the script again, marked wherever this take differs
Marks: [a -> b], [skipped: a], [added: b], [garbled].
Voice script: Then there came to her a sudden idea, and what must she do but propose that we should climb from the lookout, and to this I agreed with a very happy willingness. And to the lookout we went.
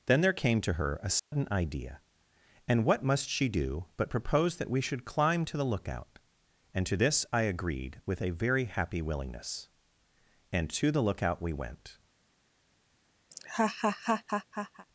Then there came to her a sudden idea, and what must she do but propose that we should climb [from -> to] the lookout, and to this I agreed with a very happy willingness. And to the lookout we went.